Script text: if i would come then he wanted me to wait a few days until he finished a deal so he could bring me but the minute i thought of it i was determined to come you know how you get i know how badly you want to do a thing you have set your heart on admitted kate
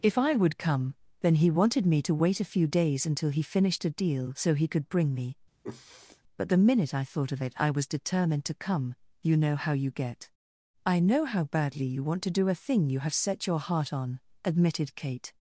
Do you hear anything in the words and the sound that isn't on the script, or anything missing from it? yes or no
yes